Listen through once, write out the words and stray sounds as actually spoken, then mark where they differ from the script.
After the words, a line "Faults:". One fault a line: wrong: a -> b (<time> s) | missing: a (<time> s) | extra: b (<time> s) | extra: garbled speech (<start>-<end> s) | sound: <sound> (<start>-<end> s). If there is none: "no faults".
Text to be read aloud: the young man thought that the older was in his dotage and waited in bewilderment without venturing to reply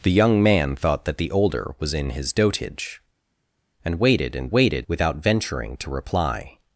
the young man thought that the older was in his dotage and waited in waited without venturing to reply
Faults:
wrong: bewilderment -> waited (4.5 s)